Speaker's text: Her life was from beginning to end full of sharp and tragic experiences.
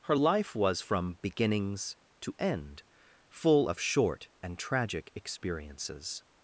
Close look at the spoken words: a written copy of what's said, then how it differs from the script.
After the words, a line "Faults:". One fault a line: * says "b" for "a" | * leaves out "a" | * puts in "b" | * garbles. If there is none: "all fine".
Her life was from beginnings to end full of short and tragic experiences.
Faults:
* says "beginnings" for "beginning"
* says "short" for "sharp"